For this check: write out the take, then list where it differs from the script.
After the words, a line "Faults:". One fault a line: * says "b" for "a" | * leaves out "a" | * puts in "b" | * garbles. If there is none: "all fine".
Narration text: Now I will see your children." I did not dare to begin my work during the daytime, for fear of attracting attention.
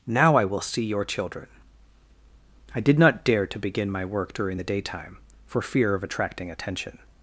Now I will see your children." I did not dare to begin my work during the daytime, for fear of attracting attention.
Faults:
all fine